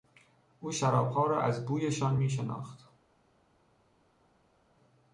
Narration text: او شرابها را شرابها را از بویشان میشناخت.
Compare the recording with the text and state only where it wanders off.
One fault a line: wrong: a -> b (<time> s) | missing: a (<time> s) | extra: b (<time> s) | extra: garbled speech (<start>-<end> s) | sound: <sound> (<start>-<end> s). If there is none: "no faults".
missing: شرابها را (1.4 s)